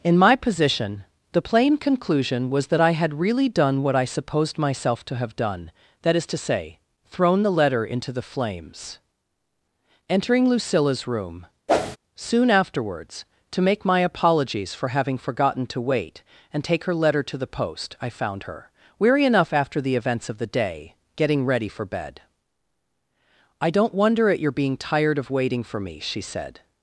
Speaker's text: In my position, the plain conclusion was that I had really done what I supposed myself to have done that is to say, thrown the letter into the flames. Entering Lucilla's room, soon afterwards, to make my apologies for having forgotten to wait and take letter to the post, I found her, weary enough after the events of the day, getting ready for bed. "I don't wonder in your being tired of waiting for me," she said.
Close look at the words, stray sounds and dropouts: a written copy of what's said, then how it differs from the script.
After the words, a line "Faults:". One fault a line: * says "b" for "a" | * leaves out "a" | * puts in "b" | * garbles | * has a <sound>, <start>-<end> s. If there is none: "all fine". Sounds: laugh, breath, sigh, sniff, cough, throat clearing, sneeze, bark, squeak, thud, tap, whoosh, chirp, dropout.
In my position, the plain conclusion was that I had really done what I supposed myself to have done that is to say, thrown the letter into the flames. Entering Lucilla's room, soon afterwards, to make my apologies for having forgotten to wait and take her letter to the post, I found her, weary enough after the events of the day, getting ready for bed. "I don't wonder at your being tired of waiting for me," she said.
Faults:
* has a whoosh, 11.7-12.0 s
* puts in "her"
* says "at" for "in"